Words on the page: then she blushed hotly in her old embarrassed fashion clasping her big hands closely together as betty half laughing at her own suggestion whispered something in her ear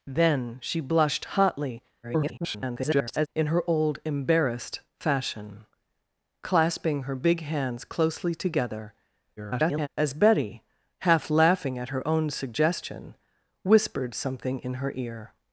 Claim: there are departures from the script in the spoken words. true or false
true